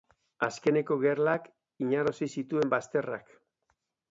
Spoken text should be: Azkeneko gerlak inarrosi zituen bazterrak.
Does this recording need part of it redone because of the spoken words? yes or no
no